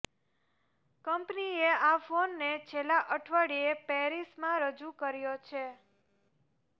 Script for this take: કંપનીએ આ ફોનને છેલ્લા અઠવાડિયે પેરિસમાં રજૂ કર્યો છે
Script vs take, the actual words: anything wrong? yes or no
no